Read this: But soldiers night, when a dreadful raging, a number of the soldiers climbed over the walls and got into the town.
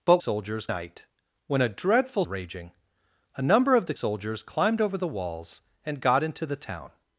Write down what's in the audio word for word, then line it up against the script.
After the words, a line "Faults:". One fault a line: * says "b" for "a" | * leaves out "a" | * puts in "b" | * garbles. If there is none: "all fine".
But soldiers night, when a dreadful raging, a number of the soldiers climbed over the walls and got into the town.
Faults:
all fine